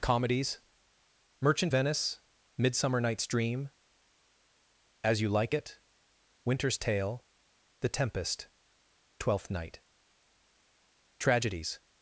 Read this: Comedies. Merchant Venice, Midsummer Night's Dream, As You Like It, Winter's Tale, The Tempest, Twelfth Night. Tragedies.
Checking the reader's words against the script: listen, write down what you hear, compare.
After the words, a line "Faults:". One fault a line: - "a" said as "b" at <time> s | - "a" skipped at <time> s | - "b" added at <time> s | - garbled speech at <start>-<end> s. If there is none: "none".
Comedies. Merchant Venice, Midsummer Night's Dream, As You Like It, Winter's Tale, The Tempest, Twelfth Night. Tragedies.
Faults:
none